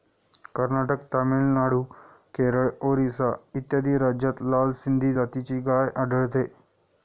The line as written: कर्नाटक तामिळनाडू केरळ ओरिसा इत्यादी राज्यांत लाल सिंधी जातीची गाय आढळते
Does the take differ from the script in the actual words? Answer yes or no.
no